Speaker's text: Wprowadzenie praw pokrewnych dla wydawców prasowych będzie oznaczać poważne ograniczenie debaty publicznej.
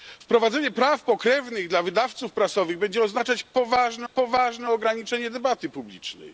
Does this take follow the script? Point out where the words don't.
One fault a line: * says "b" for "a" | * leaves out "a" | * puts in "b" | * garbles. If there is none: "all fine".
* puts in "poważne"